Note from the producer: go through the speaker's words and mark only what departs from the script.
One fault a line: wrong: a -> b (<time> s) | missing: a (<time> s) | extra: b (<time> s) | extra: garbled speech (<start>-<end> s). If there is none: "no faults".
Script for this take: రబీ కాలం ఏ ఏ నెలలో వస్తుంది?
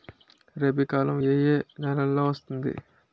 no faults